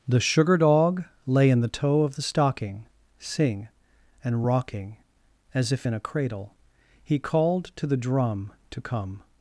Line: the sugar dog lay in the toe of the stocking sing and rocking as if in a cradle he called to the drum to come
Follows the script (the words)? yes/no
yes